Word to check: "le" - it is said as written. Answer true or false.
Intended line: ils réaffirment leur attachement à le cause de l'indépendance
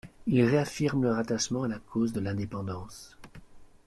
false